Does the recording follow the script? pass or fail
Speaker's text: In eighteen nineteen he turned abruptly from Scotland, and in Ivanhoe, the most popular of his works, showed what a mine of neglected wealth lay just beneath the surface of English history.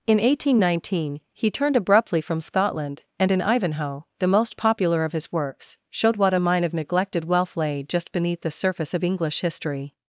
pass